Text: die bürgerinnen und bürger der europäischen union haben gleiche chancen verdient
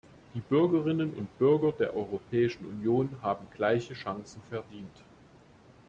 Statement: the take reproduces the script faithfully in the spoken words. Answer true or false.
true